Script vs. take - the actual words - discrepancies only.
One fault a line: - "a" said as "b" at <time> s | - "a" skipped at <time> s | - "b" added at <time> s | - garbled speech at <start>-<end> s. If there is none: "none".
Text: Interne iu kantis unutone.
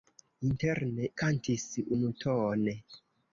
- "iu" skipped at 1.1 s